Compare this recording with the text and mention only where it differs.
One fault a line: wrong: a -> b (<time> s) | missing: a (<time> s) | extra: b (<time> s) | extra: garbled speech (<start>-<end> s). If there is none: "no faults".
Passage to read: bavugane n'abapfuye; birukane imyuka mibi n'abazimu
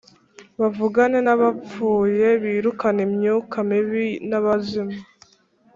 no faults